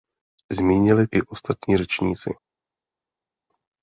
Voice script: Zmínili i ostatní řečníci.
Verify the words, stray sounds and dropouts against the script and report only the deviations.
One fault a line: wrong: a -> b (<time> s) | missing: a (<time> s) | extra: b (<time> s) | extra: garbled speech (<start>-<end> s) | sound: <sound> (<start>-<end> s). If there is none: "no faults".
no faults